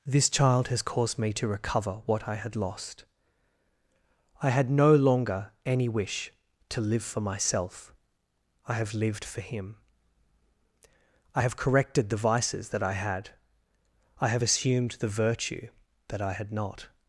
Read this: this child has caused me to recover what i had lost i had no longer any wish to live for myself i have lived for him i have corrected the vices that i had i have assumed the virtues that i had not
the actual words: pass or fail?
fail